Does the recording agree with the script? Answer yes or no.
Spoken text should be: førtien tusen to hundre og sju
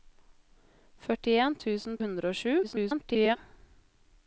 no